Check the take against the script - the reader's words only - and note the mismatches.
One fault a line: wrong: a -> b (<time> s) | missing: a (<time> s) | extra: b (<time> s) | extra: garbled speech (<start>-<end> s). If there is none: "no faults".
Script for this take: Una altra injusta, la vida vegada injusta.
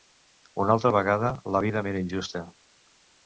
wrong: injusta -> vegada (0.9 s)
wrong: vegada -> m'era (1.9 s)